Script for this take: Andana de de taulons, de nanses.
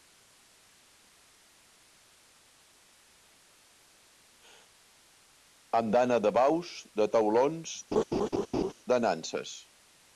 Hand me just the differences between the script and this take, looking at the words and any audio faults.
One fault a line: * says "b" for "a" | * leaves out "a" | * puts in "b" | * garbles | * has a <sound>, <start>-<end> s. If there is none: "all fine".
* puts in "baus"
* has a laugh, 7.9-8.7 s